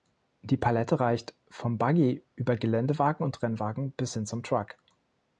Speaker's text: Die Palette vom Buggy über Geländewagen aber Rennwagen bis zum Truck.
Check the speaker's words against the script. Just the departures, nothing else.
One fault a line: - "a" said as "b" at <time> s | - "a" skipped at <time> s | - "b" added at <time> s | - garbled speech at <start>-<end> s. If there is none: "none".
- "reicht" added at 1.0 s
- "aber" said as "und" at 3.2 s
- "hin" added at 4.1 s